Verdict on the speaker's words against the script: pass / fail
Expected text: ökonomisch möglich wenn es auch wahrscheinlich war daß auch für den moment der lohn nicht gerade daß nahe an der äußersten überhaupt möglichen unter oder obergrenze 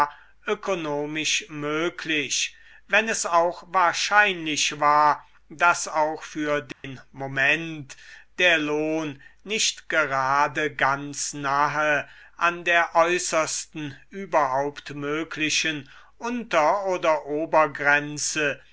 fail